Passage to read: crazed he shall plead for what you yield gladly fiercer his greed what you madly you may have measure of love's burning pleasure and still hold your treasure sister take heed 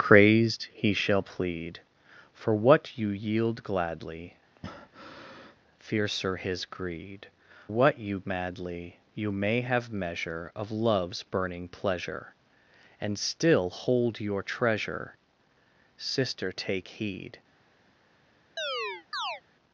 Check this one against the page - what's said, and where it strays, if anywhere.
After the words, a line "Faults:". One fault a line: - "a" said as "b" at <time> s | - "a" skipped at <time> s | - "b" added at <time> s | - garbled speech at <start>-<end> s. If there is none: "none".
crazed he shall plead for what you yield gladly fiercer his greed what you madly you may have measure of love's burning pleasure and still hold your treasure sister take heed
Faults:
none